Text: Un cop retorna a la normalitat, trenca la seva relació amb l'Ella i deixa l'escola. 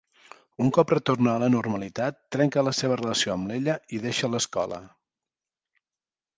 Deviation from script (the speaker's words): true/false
false